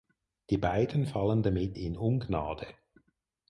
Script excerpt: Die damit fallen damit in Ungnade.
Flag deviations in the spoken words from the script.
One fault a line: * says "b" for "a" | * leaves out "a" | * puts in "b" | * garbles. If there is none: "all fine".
* says "beiden" for "damit"